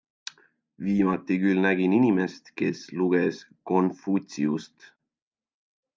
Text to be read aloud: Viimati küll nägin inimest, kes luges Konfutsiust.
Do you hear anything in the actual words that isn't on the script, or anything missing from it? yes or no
no